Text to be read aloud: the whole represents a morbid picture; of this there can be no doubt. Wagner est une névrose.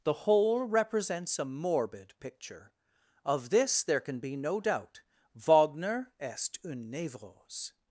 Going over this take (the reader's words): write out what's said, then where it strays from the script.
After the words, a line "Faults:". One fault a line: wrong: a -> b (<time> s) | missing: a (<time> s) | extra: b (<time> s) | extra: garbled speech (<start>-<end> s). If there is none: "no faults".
the whole represents a morbid picture; of this there can be no doubt. Wagner est une névrose.
Faults:
no faults